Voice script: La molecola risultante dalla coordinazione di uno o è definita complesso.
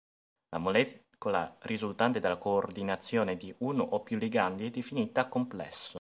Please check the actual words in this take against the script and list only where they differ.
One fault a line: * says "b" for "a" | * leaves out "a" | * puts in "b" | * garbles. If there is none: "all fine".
* puts in "più ligandi"